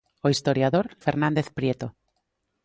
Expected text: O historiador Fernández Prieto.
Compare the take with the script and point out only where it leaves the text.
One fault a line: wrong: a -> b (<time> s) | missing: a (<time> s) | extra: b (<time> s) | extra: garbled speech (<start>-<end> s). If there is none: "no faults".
no faults